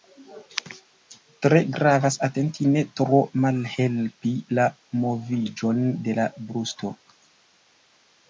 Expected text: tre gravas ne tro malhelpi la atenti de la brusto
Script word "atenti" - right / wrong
wrong